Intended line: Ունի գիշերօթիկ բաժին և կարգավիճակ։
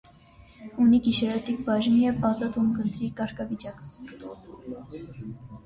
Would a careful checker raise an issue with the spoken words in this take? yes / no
yes